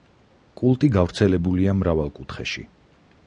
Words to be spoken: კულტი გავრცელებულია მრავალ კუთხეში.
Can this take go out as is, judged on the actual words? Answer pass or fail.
pass